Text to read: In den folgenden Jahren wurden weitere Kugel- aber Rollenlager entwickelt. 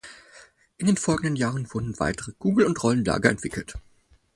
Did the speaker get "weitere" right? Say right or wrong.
right